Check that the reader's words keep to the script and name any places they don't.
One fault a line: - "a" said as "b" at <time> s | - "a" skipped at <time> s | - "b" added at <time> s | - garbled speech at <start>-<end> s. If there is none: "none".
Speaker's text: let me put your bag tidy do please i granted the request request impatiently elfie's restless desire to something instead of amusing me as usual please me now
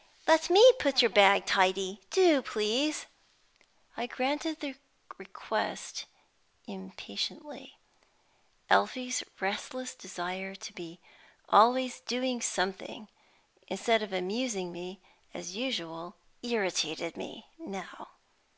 - "request" skipped at 6.1 s
- "be always doing" added at 10.7 s
- "please" said as "irritated" at 16.4 s